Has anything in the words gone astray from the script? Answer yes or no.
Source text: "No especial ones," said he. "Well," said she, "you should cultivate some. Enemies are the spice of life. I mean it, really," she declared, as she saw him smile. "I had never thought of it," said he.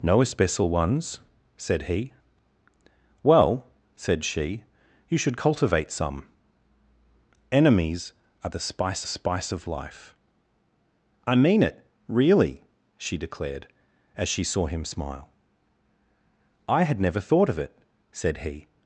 yes